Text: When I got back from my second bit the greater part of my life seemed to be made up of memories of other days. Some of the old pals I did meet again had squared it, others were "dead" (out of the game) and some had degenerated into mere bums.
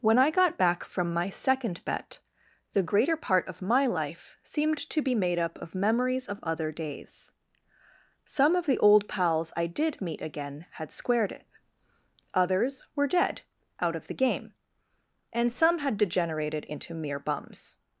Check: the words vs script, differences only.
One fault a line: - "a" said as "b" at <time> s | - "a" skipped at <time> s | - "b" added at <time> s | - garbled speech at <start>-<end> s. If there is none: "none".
- "bit" said as "bet" at 1.9 s